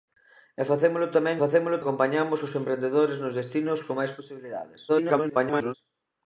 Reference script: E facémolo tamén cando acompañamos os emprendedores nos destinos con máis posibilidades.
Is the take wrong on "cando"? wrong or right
wrong